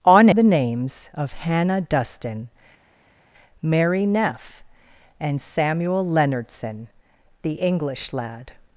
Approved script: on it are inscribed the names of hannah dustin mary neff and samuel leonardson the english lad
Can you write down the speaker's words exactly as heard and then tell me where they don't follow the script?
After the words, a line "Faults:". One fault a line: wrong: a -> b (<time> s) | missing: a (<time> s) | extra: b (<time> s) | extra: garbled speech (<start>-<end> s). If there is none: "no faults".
on the names of hannah dustin mary neff and samuel leonardson the english lad
Faults:
missing: it are inscribed (0.3 s)